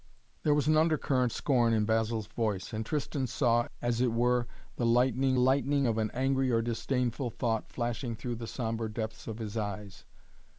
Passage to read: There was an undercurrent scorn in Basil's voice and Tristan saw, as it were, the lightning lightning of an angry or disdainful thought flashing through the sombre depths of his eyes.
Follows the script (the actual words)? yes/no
yes